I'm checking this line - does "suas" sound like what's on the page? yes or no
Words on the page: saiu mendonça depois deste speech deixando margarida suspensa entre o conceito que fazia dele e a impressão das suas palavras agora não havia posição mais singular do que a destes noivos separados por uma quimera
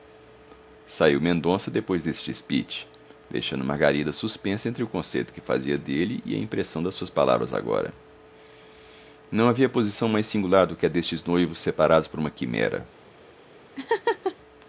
yes